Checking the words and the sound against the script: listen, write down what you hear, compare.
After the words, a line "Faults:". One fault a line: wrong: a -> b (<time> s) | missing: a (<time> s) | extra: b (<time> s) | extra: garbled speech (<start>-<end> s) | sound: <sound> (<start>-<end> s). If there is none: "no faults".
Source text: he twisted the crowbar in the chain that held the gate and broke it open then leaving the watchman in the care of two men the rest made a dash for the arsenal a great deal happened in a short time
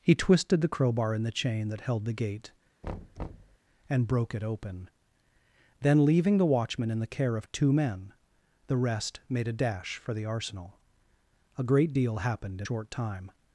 he twisted the crowbar in the chain that held the gate and broke it open then leaving the watchman in the care of two men the rest made a dash for the arsenal a great deal happened in short time
Faults:
sound: thud (2.8-3.6 s)
missing: a (12.7 s)